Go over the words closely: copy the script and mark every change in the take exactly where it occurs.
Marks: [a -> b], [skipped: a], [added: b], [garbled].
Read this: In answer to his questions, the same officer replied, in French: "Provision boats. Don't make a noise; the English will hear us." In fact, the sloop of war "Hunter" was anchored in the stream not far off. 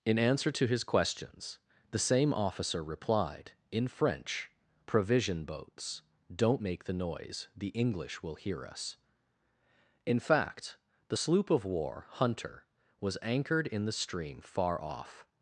In answer to his questions, the same officer replied, in French: "Provision boats. Don't make [a -> the] noise; the English will hear us." In fact, the sloop of war "Hunter" was anchored in the stream [skipped: not] far off.